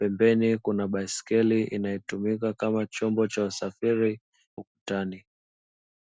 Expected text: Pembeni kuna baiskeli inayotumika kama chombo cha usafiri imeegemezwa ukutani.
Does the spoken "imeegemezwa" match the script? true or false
false